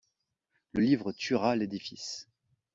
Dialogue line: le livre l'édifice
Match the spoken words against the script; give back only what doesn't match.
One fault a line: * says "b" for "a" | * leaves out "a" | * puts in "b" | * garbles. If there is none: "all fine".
* puts in "tuera"